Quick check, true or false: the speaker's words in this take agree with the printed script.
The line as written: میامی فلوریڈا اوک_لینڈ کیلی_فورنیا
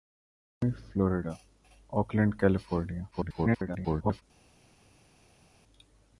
false